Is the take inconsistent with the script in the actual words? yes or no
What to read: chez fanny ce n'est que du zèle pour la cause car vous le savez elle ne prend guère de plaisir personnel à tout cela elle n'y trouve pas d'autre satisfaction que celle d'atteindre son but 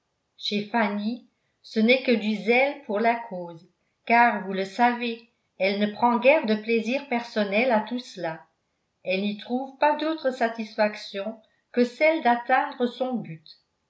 no